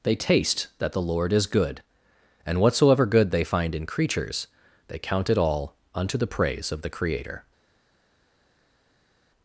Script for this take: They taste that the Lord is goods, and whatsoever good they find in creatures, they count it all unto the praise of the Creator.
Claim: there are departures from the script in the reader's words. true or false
true